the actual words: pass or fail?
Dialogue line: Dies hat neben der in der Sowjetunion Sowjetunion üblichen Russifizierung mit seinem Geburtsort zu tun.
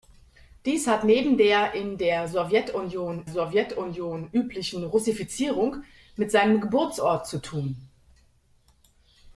pass